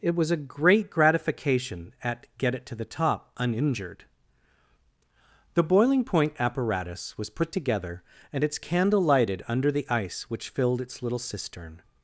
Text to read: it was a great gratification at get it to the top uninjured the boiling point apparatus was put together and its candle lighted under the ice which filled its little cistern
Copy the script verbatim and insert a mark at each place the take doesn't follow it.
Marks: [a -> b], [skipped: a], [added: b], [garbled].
it was a great gratification at get it to the top uninjured the boiling point apparatus was put together and its candle lighted under the ice which filled its little cistern